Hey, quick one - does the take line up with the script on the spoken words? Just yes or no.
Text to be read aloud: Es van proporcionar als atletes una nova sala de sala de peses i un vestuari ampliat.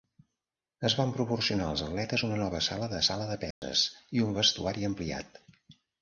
yes